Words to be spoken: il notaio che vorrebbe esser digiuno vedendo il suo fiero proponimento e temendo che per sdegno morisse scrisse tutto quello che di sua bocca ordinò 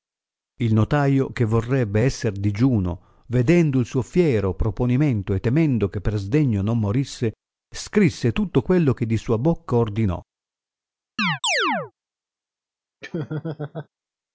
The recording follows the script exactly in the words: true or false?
false